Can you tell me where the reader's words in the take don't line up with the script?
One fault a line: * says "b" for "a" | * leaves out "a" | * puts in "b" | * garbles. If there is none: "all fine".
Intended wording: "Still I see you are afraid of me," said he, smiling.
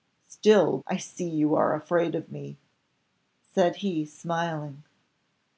all fine